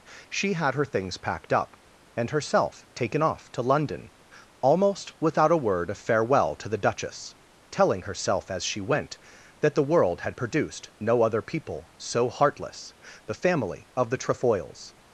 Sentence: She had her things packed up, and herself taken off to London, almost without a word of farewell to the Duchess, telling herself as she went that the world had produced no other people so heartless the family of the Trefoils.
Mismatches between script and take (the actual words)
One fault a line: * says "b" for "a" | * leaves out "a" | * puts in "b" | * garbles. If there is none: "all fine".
all fine